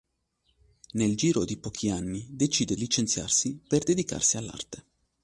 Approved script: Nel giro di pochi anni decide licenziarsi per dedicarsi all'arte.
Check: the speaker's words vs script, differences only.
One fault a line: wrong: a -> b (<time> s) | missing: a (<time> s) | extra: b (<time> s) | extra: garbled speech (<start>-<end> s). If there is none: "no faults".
no faults